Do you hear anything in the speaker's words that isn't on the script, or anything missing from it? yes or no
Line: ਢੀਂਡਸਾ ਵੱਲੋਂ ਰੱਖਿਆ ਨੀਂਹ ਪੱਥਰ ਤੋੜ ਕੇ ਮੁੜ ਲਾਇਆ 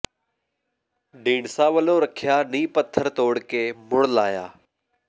no